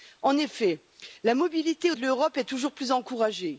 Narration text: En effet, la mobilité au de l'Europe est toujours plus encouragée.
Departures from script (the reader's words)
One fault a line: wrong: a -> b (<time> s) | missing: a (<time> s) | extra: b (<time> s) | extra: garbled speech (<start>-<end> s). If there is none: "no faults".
no faults